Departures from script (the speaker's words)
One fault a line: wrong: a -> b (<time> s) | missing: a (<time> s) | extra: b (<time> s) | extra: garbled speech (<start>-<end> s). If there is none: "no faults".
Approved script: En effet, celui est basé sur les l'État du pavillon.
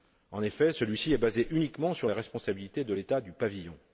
extra: ci (1.0 s)
extra: uniquement (1.5 s)
extra: responsabilités de (2.1 s)